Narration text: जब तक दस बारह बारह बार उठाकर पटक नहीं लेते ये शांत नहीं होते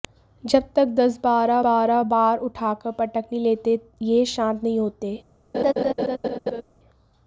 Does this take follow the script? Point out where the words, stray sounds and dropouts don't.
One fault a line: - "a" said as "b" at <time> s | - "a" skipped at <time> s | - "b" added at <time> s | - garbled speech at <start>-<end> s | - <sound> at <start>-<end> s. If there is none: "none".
- laugh at 5.5-6.6 s